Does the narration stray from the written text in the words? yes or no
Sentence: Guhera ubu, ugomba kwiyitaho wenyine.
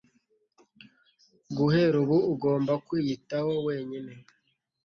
no